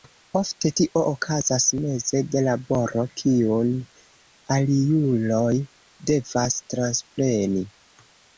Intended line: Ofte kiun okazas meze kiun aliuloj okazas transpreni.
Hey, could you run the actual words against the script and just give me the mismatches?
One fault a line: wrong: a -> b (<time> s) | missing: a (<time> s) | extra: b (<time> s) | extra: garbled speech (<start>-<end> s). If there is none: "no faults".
wrong: kiun -> tio (0.8 s)
extra: de laboro (2.3 s)
wrong: okazas -> devas (6.1 s)